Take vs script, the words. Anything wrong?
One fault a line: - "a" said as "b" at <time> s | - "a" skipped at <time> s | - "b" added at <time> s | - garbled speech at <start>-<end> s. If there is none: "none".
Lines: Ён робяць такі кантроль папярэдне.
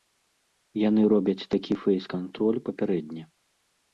- "Ён" said as "Яны" at 0.9 s
- "фэйс" added at 1.8 s